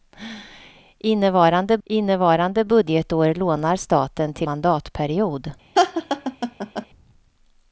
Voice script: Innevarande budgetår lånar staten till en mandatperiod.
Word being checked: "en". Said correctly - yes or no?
no